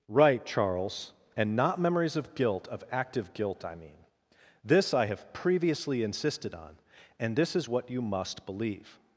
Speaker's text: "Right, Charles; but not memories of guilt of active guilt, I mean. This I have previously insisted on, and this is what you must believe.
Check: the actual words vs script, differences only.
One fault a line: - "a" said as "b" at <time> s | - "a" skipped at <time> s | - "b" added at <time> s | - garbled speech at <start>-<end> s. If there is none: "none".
- "but" said as "and" at 1.4 s